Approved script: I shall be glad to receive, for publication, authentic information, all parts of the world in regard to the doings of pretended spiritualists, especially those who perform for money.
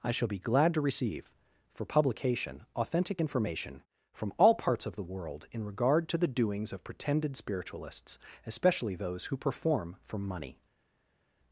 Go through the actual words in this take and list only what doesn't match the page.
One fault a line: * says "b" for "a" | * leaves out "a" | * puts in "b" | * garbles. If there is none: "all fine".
* puts in "from"